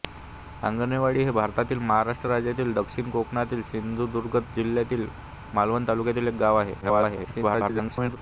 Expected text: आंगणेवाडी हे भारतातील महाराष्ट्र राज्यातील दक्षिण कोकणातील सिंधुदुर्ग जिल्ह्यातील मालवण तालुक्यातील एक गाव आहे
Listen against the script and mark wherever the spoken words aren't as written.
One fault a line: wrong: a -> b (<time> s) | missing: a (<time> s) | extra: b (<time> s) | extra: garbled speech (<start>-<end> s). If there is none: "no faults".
extra: garbled speech (6.8-8.2 s)